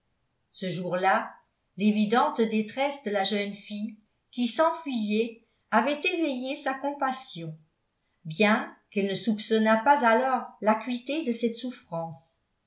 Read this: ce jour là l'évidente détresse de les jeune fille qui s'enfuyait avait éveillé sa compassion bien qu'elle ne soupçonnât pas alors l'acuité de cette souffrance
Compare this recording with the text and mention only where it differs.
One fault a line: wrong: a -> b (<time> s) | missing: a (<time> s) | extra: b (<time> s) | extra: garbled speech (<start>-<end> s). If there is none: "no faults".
wrong: les -> la (3.1 s)